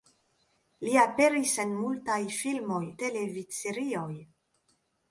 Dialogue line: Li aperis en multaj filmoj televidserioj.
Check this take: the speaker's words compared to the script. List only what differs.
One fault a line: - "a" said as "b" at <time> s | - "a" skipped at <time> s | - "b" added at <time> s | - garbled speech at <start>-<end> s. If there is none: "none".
none